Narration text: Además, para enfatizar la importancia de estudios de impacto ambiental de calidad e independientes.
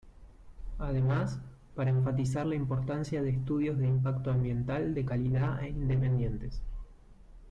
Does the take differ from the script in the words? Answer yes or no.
no